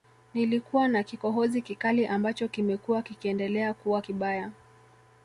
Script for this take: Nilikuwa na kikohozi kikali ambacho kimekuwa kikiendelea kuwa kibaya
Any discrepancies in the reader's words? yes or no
no